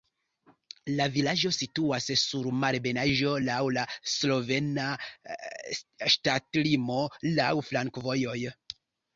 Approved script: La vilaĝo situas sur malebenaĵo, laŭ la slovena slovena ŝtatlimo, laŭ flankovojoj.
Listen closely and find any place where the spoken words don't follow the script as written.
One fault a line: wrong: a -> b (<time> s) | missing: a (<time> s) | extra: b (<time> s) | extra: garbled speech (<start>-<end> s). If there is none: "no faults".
missing: slovena (4.9 s)